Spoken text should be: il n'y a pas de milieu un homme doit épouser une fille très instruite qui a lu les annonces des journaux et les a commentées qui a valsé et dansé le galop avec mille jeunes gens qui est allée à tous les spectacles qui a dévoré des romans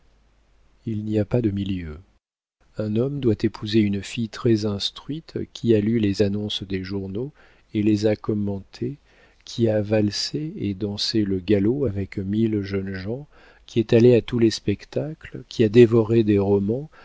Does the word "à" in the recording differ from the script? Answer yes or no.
no